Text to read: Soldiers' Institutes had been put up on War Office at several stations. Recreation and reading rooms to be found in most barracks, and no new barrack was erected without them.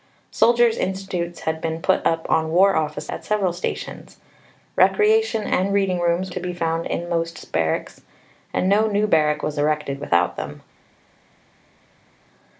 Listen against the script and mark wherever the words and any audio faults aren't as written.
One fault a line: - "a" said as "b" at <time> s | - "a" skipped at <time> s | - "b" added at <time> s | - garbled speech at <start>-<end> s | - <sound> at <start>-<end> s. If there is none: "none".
none